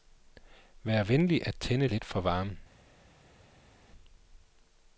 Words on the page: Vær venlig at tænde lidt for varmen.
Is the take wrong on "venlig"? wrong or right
right